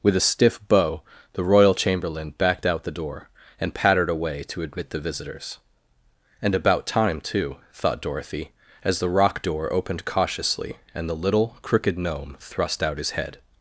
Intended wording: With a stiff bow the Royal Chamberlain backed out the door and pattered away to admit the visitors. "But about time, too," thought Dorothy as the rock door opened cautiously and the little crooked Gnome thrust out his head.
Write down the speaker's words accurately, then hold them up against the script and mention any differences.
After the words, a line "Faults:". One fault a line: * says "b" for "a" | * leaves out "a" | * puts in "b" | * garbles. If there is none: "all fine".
With a stiff bow the Royal Chamberlain backed out the door and pattered away to admit the visitors. "And about time, too," thought Dorothy as the rock door opened cautiously and the little crooked Gnome thrust out his head.
Faults:
* says "And" for "But"